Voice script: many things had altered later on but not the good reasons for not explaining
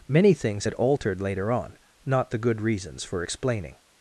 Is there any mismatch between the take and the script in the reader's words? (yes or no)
yes